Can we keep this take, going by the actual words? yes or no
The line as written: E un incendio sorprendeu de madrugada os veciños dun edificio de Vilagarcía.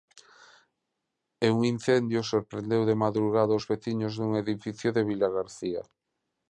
yes